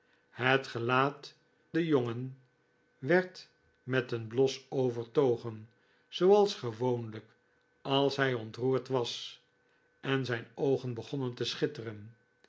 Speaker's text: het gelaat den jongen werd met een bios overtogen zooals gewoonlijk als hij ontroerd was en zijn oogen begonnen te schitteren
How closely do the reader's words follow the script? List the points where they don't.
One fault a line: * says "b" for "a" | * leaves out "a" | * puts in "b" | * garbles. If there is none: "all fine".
all fine